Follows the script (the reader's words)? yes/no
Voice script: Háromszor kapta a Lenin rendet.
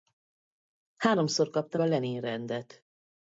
yes